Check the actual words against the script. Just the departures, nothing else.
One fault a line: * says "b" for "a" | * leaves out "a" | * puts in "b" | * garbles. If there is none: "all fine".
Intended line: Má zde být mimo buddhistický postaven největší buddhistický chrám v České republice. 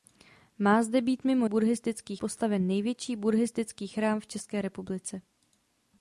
all fine